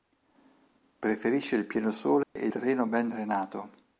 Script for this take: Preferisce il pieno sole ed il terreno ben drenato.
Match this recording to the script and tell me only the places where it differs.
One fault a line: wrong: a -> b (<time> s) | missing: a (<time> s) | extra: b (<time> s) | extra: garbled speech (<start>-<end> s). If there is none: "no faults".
missing: il (2.5 s)